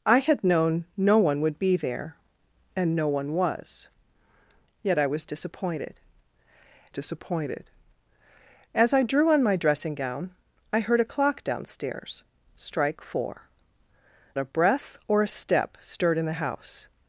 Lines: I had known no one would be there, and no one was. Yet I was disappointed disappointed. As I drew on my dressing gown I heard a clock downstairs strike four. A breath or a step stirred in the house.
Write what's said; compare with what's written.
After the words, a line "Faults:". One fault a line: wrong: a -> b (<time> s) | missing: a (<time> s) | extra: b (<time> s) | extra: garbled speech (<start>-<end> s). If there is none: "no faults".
I had known no one would be there, and no one was. Yet I was disappointed disappointed. As I drew on my dressing gown I heard a clock downstairs strike four. A breath or a step stirred in the house.
Faults:
no faults